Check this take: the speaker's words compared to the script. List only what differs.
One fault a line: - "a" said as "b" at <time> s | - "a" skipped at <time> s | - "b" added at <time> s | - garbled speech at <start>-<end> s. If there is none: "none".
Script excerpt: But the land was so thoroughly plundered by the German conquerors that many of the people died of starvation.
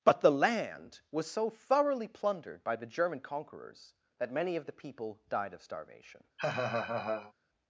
none